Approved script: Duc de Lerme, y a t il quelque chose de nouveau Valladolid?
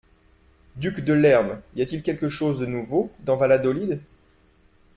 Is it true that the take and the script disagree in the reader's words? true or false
true